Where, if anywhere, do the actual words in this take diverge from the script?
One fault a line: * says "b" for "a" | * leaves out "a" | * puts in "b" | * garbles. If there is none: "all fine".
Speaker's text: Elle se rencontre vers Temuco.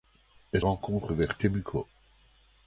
* leaves out "se"